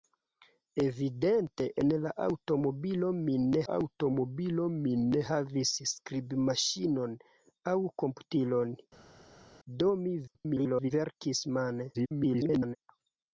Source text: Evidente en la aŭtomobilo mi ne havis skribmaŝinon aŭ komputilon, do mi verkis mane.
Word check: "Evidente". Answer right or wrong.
right